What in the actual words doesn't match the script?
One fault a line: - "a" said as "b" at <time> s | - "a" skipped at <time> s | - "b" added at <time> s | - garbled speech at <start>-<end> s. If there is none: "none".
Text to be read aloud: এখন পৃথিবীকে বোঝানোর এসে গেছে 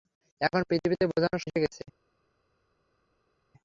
none